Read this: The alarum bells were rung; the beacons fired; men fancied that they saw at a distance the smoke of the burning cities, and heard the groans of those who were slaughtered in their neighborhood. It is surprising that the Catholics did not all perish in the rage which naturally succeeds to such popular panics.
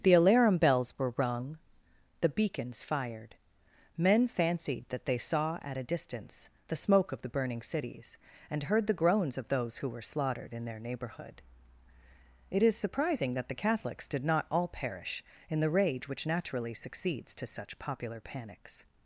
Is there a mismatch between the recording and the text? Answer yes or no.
no